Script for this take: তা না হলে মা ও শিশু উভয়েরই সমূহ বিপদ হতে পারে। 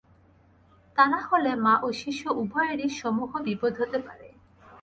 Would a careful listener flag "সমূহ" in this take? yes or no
no